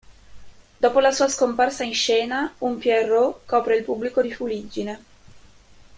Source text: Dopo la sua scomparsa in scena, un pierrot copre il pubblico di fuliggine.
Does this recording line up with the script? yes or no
yes